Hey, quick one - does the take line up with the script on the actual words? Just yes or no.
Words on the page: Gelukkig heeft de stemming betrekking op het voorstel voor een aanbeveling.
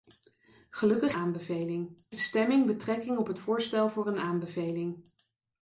no